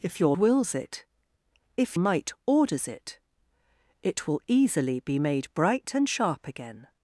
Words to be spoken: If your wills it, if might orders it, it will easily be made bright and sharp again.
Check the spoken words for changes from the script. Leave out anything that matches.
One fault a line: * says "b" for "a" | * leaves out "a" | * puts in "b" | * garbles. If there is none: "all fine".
all fine